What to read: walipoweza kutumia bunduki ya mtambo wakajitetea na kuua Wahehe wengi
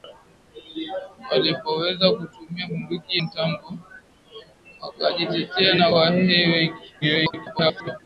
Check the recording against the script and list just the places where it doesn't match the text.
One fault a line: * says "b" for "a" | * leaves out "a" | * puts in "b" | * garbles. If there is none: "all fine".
* leaves out "ya"
* leaves out "kuua"
* garbles